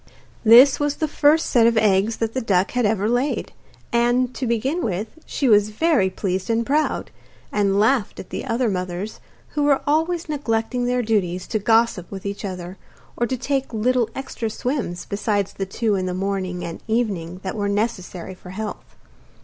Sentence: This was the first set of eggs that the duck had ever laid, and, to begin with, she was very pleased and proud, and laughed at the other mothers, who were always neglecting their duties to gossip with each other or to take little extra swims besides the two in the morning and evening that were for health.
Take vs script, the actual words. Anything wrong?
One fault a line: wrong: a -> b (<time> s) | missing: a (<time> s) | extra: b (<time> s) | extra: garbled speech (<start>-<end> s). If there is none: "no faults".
extra: necessary (17.7 s)